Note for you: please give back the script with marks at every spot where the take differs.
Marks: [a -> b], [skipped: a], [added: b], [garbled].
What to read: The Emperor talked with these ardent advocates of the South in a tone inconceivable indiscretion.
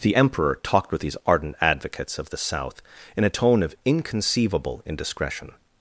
The Emperor talked with these ardent advocates of the South in a tone [added: of] inconceivable indiscretion.